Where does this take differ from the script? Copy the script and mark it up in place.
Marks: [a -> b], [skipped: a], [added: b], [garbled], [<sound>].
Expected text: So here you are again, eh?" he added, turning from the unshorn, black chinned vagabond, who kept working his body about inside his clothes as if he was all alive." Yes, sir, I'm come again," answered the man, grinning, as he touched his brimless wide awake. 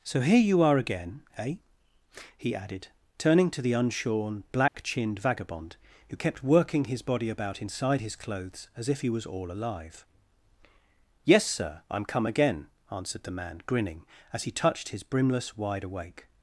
So here you are again, eh?" he added, turning [from -> to] the unshorn, black [dropout] chinned vagabond, who kept working his body about inside his clothes as if he was all alive." Yes, sir, I'm come again," answered the man, grinning, as he touched his brimless wide awake.